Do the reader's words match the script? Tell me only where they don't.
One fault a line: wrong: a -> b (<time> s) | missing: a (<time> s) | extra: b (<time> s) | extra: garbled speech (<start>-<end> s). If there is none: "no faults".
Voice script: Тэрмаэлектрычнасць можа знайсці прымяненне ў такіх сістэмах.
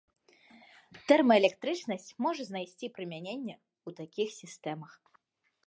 no faults